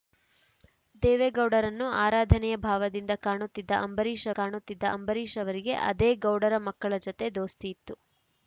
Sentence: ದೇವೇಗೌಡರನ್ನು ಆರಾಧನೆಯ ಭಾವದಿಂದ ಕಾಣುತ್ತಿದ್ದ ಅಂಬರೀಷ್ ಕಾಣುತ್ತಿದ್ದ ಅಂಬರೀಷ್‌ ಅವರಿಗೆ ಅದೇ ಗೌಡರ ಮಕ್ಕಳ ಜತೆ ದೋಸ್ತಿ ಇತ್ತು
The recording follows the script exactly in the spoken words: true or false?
true